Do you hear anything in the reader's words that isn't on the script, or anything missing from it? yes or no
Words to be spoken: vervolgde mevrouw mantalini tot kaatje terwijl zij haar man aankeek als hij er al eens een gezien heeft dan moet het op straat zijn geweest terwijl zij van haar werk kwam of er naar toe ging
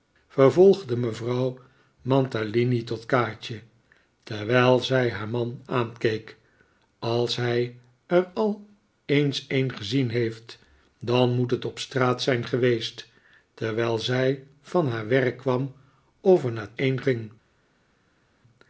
yes